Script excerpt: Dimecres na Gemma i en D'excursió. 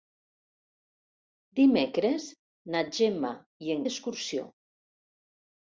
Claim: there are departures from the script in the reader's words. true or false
false